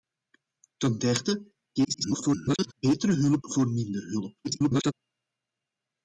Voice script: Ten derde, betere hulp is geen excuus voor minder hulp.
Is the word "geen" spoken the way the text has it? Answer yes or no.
no